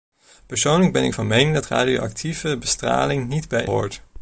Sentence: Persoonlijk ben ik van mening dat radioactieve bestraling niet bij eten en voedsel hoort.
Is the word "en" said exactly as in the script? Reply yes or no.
no